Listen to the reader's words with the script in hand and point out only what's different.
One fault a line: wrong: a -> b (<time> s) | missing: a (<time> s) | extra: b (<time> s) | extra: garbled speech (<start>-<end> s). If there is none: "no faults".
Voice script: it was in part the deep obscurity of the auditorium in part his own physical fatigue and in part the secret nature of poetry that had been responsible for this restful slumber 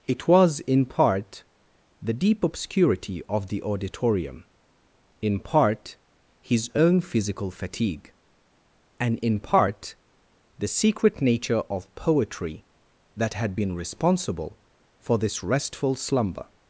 no faults